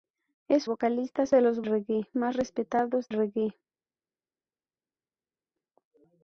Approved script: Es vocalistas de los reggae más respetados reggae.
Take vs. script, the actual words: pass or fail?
pass